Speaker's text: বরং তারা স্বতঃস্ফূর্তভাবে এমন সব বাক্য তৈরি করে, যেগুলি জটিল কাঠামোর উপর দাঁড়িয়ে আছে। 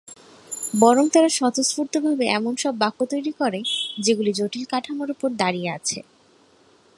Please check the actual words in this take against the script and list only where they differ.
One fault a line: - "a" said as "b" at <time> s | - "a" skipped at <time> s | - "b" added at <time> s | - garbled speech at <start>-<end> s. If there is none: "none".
none